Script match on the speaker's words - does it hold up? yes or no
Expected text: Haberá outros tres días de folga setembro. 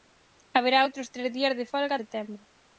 yes